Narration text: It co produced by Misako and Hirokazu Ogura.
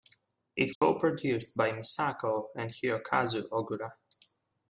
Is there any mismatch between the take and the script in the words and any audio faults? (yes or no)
yes